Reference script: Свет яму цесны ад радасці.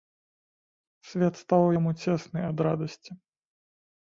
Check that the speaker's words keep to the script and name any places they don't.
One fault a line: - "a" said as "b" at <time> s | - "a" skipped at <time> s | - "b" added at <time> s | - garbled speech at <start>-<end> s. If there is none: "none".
- "стаў" added at 1.4 s